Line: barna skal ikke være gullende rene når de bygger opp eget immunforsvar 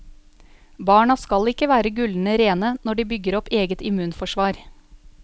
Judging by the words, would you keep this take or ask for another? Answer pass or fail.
pass